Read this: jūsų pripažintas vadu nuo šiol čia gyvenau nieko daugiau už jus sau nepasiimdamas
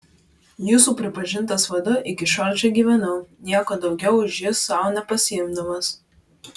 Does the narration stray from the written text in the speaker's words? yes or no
yes